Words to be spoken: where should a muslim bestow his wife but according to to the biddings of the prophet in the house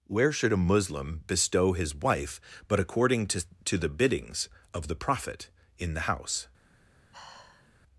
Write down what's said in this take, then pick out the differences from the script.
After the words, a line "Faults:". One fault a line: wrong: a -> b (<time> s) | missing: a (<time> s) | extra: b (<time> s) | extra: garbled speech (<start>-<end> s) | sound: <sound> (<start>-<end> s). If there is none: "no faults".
where should a muslim bestow his wife but according to to the biddings of the prophet in the house
Faults:
sound: sigh (7.1-7.8 s)